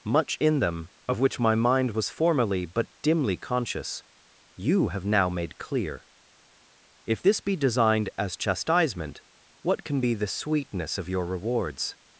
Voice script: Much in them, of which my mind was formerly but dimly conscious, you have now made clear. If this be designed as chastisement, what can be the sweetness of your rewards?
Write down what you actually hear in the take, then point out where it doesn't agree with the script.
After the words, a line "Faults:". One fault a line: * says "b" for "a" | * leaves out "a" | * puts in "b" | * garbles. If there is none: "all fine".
Much in them, of which my mind was formerly but dimly conscious, you have now made clear. If this be designed as chastisement, what can be the sweetness of your rewards?
Faults:
all fine